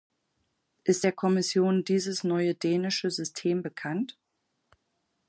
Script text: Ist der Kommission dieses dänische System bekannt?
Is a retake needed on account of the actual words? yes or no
yes